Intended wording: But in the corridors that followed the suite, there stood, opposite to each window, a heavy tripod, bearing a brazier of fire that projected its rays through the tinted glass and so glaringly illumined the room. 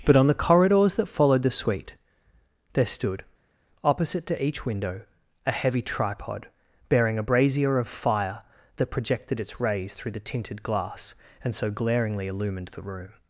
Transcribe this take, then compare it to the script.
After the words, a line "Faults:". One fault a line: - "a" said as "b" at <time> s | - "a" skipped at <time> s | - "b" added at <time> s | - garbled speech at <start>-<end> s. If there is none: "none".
But on the corridors that followed the suite, there stood, opposite to each window, a heavy tripod, bearing a brazier of fire that projected its rays through the tinted glass and so glaringly illumined the room.
Faults:
- "in" said as "on" at 0.1 s